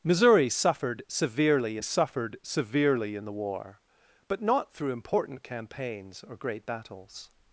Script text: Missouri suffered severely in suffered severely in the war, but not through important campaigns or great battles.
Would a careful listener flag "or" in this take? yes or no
no